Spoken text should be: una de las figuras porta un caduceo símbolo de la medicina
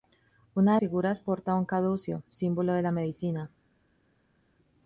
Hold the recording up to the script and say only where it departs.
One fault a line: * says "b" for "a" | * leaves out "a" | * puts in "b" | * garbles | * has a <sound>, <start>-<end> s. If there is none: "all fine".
* leaves out "las"